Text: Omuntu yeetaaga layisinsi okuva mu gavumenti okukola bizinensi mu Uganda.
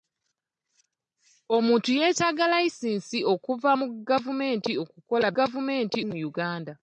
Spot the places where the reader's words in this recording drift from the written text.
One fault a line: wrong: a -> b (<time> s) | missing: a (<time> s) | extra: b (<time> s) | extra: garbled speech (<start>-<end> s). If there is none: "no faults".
wrong: bizinensi -> gavumenti (5.4 s)